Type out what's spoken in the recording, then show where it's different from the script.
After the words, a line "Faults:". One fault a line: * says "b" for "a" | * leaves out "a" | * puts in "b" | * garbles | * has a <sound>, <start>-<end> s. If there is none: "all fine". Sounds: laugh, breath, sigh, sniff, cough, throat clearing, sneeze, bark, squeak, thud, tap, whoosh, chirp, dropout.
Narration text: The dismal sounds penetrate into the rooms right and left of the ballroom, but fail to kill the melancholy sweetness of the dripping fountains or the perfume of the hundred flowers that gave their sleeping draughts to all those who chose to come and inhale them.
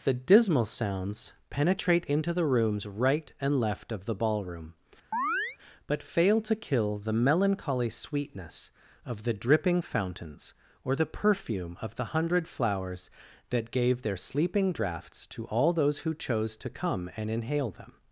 The dismal sounds penetrate into the rooms right and left of the ballroom, but fail to kill the melancholy sweetness of the dripping fountains or the perfume of the hundred flowers that gave their sleeping draughts to all those who chose to come and inhale them.
Faults:
* has a chirp, 5.1-5.6 s